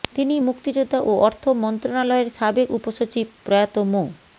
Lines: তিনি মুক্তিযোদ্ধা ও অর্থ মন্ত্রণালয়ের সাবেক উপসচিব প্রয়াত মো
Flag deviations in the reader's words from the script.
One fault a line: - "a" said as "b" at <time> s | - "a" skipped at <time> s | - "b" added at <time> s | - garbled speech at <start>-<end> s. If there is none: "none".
none